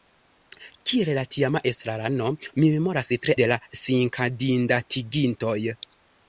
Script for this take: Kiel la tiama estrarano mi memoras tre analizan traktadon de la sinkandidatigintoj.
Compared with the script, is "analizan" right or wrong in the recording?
wrong